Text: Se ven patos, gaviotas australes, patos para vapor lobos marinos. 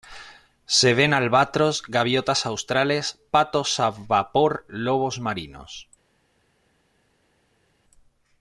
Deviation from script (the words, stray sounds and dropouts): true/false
true